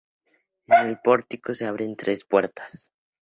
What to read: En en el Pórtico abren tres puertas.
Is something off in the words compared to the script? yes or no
yes